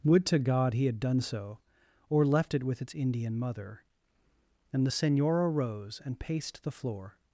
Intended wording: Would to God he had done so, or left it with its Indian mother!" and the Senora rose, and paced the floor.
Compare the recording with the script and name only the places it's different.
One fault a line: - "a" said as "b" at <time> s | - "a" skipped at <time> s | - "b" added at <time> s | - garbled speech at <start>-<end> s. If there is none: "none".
none